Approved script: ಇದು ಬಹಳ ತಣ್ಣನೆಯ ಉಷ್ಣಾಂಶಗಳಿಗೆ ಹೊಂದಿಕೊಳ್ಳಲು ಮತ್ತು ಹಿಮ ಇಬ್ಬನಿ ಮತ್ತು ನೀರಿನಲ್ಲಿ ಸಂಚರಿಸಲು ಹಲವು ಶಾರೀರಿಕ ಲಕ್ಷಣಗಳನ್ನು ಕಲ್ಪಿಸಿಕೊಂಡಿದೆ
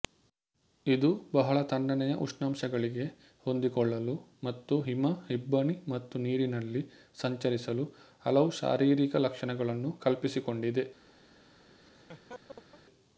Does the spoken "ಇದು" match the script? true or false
true